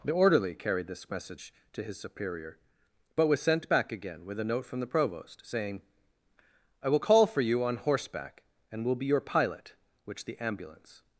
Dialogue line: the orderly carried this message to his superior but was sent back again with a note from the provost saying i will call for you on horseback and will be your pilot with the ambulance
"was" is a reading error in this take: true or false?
false